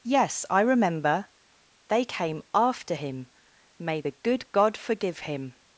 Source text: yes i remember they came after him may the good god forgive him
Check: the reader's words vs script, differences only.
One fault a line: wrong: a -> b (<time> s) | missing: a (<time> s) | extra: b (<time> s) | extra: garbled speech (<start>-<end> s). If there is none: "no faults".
no faults